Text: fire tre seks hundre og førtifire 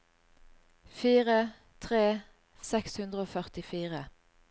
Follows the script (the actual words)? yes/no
yes